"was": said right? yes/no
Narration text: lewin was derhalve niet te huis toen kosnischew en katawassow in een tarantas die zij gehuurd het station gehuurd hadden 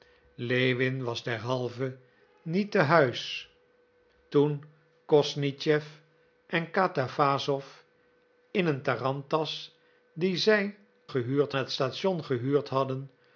yes